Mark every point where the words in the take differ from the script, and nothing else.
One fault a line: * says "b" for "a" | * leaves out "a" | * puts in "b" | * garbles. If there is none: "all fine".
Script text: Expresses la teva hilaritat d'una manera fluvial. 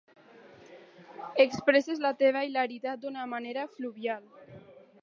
all fine